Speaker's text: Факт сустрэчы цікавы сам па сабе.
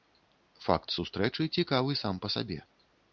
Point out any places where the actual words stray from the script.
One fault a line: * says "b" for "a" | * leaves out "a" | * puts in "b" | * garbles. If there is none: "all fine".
all fine